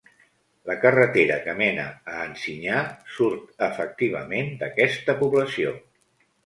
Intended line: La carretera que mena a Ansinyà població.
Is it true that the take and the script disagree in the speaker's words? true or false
true